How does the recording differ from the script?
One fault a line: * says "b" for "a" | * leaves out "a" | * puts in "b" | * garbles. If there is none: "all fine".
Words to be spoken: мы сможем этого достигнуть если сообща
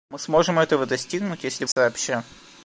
all fine